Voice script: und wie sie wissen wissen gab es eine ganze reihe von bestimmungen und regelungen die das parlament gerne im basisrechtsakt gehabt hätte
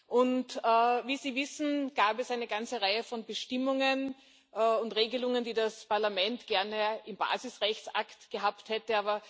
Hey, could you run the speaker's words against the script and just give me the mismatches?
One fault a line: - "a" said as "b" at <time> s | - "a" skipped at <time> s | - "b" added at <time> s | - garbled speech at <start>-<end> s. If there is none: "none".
- "wissen" skipped at 1.9 s